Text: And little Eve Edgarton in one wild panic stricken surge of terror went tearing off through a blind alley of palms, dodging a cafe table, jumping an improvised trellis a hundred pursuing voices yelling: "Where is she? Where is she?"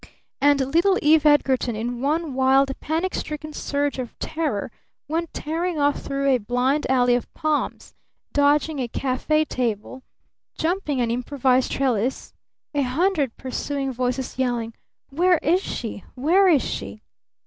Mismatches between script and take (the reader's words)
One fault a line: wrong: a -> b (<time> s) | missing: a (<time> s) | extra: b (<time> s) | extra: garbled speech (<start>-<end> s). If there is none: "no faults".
no faults